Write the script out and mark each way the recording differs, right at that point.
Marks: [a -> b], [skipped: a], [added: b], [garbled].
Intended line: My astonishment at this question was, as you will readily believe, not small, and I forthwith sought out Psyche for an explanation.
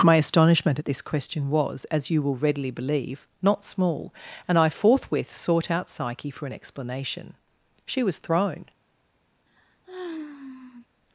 My astonishment at this question was, as you will readily believe, not small, and I forthwith sought out Psyche for an explanation. [added: She was thrown]